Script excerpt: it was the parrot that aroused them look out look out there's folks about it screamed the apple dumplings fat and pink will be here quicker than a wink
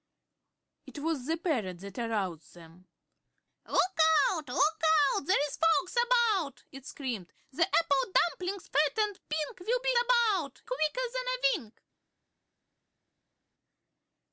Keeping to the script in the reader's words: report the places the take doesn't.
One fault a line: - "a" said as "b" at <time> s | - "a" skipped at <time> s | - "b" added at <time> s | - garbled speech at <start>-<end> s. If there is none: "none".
- "here" said as "about" at 10.0 s